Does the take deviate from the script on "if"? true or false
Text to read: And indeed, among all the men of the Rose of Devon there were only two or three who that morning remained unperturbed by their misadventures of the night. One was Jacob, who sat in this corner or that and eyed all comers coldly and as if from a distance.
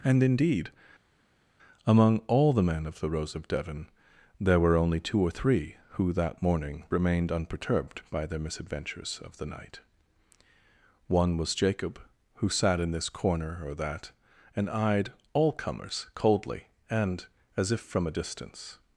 false